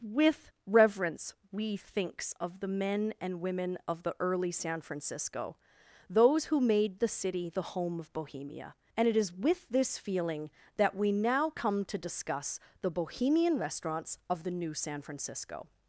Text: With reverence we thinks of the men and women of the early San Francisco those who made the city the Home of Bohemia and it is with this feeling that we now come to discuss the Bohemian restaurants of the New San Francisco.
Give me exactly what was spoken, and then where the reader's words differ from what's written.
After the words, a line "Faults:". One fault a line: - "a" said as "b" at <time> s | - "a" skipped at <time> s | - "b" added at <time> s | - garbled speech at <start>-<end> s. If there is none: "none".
With reverence we thinks of the men and women of the early San Francisco those who made the city the Home of Bohemia and it is with this feeling that we now come to discuss the Bohemian restaurants of the New San Francisco.
Faults:
none